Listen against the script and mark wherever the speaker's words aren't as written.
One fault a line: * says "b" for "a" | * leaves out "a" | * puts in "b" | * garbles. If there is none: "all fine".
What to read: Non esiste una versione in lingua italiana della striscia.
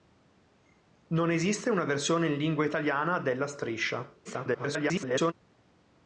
* garbles